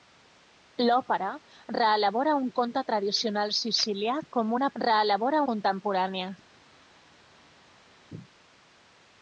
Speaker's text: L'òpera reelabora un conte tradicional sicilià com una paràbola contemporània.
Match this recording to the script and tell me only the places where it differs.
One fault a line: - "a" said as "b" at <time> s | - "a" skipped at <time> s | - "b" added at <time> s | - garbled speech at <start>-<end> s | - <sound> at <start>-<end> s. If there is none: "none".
- "paràbola" said as "reelabora" at 4.8 s